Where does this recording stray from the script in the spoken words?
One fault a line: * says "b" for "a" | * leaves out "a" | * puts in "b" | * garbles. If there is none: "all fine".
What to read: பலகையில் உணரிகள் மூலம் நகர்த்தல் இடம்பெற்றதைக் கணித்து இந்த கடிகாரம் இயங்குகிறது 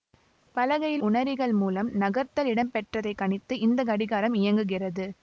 all fine